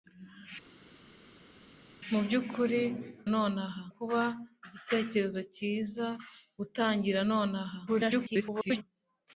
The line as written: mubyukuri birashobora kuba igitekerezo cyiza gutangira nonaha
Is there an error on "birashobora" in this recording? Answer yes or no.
yes